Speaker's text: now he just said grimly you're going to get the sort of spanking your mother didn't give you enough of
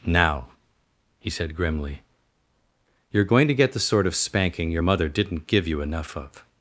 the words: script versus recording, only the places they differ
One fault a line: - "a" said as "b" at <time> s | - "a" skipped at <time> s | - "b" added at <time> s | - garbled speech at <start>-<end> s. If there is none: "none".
- "just" skipped at 1.3 s